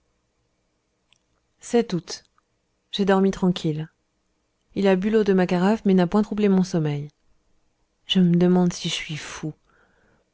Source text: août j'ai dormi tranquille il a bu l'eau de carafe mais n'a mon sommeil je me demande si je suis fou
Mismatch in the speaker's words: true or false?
true